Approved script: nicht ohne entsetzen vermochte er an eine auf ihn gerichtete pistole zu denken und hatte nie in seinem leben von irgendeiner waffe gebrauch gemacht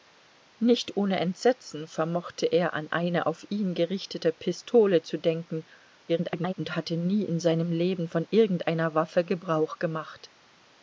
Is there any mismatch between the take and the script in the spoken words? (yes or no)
yes